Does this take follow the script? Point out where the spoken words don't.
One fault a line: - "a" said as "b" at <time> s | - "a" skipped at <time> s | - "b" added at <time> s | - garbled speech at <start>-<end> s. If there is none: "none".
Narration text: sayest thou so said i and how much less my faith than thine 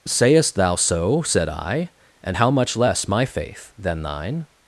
none